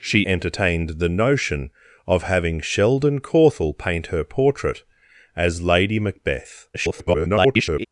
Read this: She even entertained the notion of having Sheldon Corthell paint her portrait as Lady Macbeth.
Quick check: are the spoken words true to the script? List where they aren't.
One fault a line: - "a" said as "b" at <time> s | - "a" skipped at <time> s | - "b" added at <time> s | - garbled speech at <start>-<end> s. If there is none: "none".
- "even" skipped at 0.2 s
- garbled speech at 6.7-7.9 s